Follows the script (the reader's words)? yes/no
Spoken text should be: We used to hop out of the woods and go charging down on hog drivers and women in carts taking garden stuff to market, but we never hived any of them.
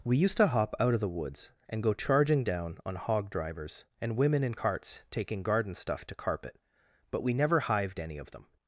no